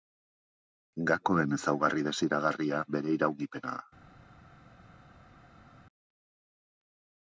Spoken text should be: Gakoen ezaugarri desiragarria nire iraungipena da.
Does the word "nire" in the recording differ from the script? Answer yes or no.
yes